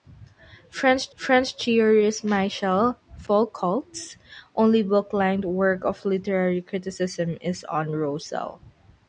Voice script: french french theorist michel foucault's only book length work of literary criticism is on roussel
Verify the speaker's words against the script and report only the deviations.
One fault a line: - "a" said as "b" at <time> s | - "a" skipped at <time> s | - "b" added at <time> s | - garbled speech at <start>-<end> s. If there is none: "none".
none